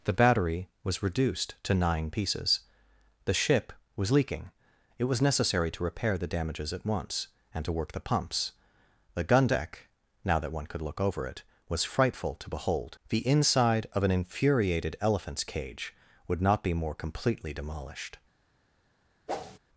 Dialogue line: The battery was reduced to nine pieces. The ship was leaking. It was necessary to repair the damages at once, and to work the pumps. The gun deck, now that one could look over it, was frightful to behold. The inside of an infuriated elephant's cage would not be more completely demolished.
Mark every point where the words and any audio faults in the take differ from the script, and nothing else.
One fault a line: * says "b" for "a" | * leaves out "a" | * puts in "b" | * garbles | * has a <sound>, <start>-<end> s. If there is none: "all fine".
* has a whoosh, 19.3-19.6 s